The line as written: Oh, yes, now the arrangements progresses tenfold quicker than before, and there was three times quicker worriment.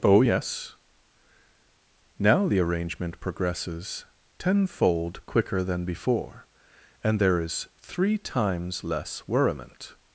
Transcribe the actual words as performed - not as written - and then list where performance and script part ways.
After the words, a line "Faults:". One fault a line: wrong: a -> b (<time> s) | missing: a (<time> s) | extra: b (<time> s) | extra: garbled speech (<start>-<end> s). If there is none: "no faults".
Oh, yes, now the arrangement progresses tenfold quicker than before, and there is three times less worriment.
Faults:
wrong: arrangements -> arrangement (2.6 s)
wrong: was -> is (7.4 s)
wrong: quicker -> less (8.8 s)